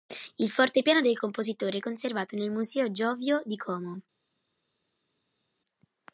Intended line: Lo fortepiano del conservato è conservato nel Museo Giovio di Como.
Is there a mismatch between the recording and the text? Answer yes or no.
yes